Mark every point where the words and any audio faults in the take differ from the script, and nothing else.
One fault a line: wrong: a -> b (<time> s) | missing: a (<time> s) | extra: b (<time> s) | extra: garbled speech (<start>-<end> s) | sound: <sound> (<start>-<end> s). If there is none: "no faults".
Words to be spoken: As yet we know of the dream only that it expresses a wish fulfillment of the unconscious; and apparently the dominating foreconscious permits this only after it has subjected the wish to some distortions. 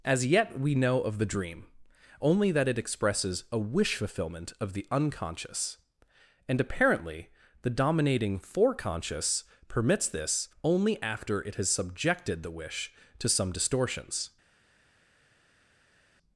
no faults